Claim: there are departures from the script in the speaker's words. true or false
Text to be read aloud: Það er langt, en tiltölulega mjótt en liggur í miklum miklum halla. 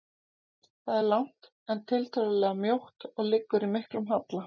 true